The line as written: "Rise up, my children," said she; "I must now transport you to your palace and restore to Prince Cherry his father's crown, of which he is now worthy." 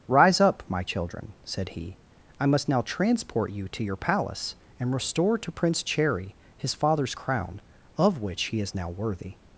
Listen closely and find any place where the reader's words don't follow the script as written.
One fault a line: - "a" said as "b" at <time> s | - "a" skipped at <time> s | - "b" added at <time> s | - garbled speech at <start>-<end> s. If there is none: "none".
- "she" said as "he" at 1.7 s